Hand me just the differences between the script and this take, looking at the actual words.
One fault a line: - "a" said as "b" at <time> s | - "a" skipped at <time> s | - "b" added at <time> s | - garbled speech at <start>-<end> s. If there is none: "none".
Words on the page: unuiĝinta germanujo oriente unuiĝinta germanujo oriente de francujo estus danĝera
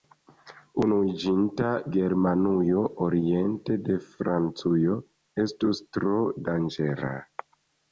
- "unuiĝinta germanujo oriente" skipped at 3.8 s
- "tro" added at 6.0 s